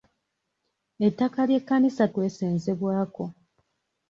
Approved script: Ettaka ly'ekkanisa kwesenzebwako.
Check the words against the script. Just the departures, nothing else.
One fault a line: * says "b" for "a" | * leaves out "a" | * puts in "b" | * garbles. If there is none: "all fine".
all fine